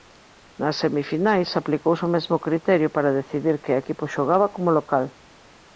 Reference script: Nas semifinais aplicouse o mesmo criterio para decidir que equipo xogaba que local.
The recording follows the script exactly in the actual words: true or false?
false